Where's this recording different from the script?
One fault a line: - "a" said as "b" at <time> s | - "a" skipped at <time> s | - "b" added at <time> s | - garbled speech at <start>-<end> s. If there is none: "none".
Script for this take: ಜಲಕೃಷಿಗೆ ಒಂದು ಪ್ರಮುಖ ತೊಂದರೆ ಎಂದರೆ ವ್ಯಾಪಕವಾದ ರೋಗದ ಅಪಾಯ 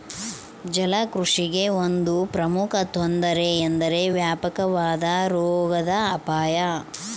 none